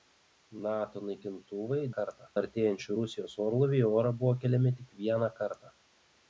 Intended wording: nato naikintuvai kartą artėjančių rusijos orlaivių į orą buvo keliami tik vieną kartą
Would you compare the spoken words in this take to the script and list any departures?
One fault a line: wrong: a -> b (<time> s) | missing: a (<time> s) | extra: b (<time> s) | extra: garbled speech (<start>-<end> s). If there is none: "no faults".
no faults